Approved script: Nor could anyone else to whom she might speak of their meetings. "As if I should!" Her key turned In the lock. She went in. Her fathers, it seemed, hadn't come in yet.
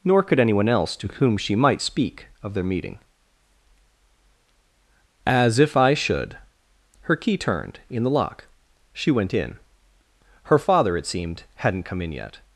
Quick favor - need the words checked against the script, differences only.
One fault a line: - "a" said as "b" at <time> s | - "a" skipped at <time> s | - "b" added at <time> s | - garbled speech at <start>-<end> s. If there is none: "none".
- "meetings" said as "meeting" at 2.6 s
- "fathers" said as "father" at 10.6 s